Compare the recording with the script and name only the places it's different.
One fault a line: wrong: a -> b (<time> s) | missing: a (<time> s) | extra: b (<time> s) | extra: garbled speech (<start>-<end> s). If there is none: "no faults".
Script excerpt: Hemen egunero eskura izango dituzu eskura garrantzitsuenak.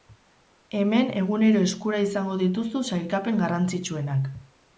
wrong: eskura -> sailkapen (2.9 s)